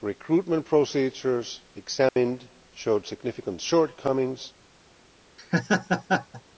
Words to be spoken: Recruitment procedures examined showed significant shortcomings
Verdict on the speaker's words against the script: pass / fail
pass